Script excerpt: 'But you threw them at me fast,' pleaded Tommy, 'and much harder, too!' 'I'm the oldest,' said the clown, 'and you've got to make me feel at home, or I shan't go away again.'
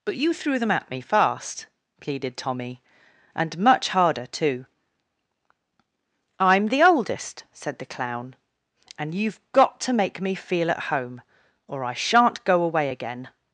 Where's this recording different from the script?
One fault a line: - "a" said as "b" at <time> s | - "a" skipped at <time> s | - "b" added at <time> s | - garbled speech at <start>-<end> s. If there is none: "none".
none